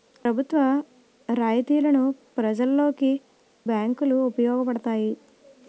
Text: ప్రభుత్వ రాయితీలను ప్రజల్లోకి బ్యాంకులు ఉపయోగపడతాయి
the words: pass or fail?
pass